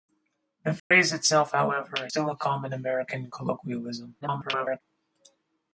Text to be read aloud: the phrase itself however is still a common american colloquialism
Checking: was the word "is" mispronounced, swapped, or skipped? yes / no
yes